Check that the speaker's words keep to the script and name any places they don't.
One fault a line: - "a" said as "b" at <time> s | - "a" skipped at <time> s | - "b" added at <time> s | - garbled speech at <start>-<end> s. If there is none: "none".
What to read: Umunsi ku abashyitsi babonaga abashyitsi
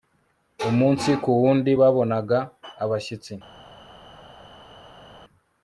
- "abashyitsi" said as "wundi" at 1.4 s